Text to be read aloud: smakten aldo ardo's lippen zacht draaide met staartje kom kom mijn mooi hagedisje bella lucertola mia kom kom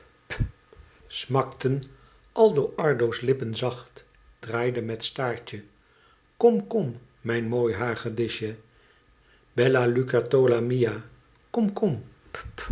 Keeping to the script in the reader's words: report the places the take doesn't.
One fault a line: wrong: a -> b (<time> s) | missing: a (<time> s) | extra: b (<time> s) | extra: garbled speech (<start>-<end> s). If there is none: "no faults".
no faults